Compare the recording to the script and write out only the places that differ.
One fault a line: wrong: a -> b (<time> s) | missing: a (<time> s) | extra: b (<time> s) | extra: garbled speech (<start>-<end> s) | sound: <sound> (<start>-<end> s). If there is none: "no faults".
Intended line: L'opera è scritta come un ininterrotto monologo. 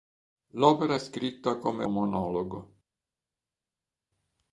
missing: un ininterrotto (1.8 s)